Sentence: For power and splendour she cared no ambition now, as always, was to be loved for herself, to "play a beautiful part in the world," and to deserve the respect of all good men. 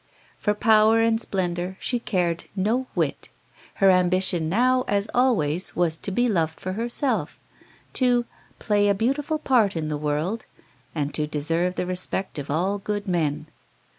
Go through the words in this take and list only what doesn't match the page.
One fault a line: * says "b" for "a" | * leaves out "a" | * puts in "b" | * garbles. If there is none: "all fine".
* puts in "whit Her"